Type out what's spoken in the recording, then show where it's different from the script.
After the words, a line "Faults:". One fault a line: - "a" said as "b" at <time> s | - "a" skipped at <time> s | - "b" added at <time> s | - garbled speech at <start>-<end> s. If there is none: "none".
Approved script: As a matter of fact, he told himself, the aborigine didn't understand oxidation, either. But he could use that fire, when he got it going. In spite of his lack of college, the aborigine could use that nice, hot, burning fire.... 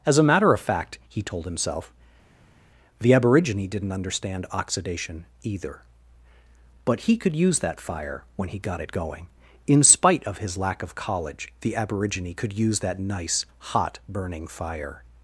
As a matter of fact, he told himself, the aborigine didn't understand oxidation, either. But he could use that fire, when he got it going. In spite of his lack of college, the aborigine could use that nice, hot, burning fire....
Faults:
none